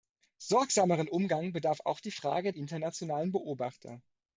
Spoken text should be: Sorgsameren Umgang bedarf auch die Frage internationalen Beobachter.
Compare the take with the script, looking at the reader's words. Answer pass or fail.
pass